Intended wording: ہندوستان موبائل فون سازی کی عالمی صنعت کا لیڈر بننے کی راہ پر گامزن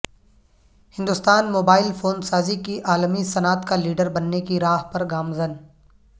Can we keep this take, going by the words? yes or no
yes